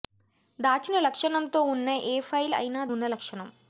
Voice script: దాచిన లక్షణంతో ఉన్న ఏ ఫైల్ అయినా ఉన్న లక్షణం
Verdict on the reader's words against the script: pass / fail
pass